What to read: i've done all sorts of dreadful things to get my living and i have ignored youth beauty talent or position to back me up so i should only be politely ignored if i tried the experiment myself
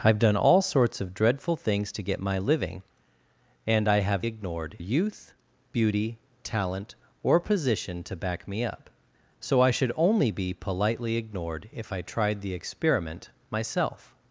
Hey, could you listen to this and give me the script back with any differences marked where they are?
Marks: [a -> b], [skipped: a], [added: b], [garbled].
i've done all sorts of dreadful things to get my living and i have ignored youth beauty talent or position to back me up so i should only be politely ignored if i tried the experiment myself